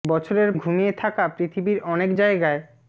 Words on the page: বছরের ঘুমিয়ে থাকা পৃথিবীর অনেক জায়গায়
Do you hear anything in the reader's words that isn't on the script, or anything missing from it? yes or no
no